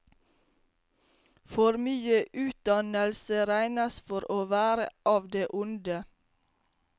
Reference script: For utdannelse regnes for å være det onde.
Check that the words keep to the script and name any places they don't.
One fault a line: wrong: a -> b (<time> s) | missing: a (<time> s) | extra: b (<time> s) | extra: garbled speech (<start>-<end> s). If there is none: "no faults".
extra: mye (1.9 s)
extra: av (5.1 s)